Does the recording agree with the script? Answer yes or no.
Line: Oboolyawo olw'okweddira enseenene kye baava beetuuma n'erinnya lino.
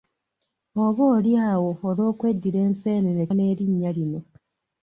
no